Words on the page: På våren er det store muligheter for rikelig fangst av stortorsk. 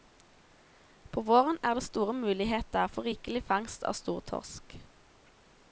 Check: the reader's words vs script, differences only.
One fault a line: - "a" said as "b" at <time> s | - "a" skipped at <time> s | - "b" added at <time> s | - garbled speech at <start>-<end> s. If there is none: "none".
none